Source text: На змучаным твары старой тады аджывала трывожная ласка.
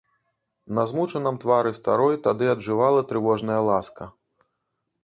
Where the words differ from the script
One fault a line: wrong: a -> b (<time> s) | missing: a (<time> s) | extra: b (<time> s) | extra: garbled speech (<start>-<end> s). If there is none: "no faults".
no faults